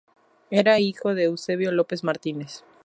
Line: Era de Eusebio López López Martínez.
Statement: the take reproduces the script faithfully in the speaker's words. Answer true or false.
false